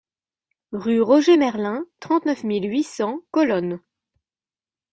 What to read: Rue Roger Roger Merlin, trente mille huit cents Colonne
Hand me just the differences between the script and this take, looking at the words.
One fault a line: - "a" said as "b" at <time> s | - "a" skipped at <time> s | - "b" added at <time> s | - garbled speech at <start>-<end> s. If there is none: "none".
- "Roger" skipped at 1.4 s
- "neuf" added at 2.3 s